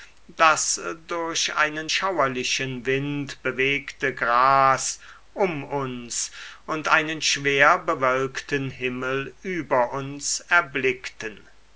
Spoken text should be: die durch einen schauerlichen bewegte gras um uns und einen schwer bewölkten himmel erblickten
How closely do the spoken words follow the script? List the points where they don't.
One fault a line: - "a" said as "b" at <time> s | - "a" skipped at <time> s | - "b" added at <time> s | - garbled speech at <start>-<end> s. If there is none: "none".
- "die" said as "das" at 0.3 s
- "wind" added at 2.8 s
- "über uns" added at 9.4 s